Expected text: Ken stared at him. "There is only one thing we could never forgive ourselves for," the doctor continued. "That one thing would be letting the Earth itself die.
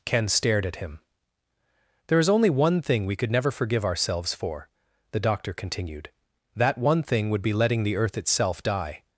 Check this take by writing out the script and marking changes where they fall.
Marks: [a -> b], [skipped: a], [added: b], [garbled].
Ken stared at him. "There is only one thing we could never forgive ourselves for," the doctor continued. "That one thing would be letting the Earth itself die.